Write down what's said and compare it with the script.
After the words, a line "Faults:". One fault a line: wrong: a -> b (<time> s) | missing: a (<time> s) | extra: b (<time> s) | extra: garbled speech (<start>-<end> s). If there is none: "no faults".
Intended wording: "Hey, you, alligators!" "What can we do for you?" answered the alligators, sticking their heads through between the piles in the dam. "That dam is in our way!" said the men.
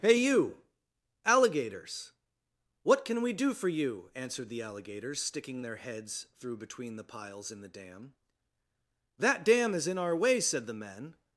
"Hey, you, alligators!" "What can we do for you?" answered the alligators, sticking their heads through between the piles in the dam. "That dam is in our way!" said the men.
Faults:
no faults